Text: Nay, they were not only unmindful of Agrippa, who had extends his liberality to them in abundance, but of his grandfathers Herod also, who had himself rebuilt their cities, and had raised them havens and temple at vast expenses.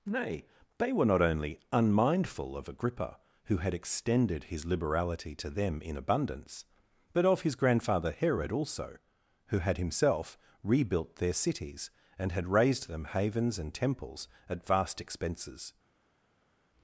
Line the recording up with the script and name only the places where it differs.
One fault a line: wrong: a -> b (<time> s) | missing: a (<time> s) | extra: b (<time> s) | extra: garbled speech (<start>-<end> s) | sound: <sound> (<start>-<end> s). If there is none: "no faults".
wrong: extends -> extended (3.8 s)
wrong: grandfathers -> grandfather (7.5 s)
wrong: temple -> temples (13.7 s)